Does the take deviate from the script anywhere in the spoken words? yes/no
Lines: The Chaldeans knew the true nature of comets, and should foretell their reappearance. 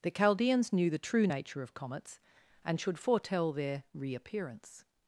no